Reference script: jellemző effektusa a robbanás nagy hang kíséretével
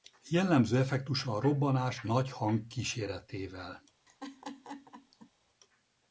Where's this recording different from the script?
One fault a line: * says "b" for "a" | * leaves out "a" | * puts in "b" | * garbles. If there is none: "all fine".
all fine